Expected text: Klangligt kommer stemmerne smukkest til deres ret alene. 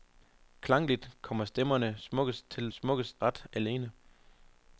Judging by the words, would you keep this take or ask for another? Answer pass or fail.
fail